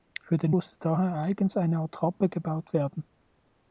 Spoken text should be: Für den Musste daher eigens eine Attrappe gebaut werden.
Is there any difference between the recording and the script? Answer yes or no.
no